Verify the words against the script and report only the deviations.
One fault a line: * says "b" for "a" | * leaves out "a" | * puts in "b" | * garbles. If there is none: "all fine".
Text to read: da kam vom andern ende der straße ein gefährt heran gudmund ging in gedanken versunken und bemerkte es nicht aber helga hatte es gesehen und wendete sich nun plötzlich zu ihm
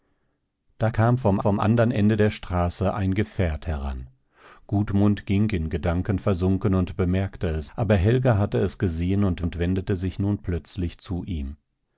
* puts in "vom"
* leaves out "nicht"
* puts in "und"